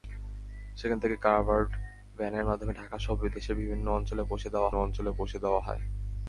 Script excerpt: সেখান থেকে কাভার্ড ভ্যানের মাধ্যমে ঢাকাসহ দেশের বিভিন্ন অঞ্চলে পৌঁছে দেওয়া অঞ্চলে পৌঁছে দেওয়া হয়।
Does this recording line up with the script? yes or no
yes